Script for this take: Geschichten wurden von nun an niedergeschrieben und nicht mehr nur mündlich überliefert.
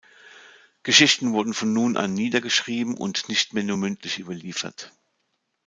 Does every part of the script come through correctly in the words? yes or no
yes